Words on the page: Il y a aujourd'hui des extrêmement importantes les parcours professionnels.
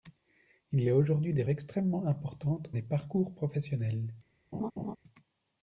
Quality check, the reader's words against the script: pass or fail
pass